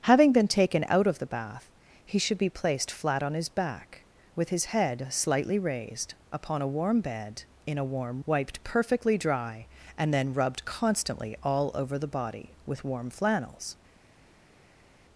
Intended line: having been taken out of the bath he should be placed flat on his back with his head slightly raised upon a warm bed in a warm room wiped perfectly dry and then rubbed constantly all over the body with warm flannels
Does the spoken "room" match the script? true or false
false